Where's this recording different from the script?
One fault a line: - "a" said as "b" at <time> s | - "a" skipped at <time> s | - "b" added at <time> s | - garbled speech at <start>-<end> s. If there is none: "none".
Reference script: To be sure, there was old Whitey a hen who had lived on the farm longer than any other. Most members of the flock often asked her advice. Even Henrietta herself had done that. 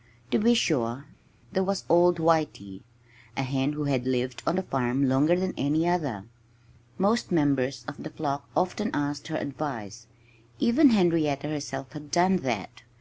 none